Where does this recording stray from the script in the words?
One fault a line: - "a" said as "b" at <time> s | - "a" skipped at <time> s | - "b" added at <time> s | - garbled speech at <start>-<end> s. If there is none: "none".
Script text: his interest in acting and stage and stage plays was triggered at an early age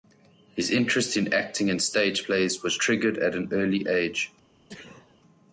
- "and stage" skipped at 2.2 s